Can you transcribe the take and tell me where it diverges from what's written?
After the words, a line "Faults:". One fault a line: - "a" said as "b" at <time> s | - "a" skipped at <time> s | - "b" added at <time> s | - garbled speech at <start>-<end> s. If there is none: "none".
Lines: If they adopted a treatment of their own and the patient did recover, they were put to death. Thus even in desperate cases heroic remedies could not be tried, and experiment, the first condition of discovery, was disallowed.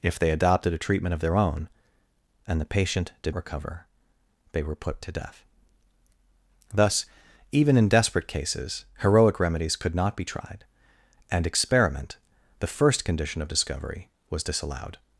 If they adopted a treatment of their own and the patient did recover, they were put to death. Thus even in desperate cases heroic remedies could not be tried, and experiment, the first condition of discovery, was disallowed.
Faults:
none